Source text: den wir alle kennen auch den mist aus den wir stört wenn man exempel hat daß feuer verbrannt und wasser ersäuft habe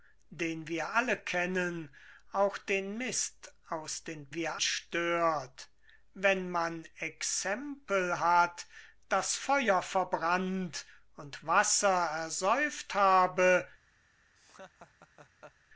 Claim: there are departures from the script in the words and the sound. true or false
true